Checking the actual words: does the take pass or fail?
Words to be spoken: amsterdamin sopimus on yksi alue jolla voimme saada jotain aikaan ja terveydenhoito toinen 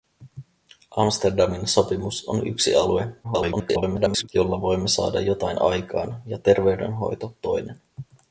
fail